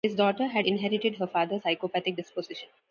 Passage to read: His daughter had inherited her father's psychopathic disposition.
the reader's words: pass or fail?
pass